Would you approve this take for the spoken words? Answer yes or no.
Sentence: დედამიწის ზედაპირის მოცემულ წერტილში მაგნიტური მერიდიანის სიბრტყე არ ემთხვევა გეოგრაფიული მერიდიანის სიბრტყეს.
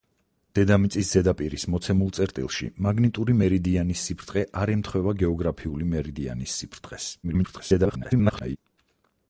no